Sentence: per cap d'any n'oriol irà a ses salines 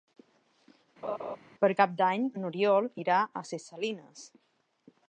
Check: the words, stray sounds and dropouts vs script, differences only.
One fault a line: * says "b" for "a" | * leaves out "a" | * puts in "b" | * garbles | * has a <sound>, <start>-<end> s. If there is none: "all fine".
* has a laugh, 1.0-1.4 s